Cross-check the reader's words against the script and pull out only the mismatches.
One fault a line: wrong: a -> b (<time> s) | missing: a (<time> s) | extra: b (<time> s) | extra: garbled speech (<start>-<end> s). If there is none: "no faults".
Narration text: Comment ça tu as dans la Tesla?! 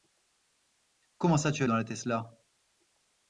no faults